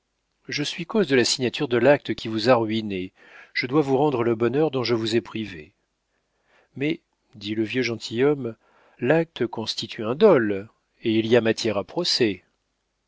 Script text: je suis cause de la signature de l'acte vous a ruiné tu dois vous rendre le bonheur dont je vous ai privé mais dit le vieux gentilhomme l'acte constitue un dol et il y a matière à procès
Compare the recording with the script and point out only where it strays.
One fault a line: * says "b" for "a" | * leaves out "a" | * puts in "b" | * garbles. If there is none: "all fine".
* puts in "qui"
* says "je" for "tu"